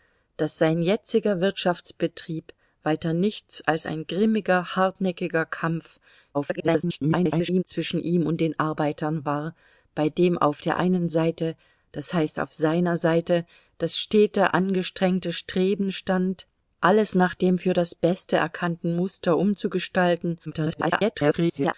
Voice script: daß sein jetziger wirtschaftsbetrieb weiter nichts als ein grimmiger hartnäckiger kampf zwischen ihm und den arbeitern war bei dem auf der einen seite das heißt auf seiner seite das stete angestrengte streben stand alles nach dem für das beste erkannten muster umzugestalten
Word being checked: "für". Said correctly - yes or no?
yes